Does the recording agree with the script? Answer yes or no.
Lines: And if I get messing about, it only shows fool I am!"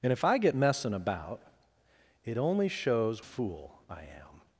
yes